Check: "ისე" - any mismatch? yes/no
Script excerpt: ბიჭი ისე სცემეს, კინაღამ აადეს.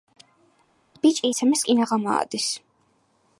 yes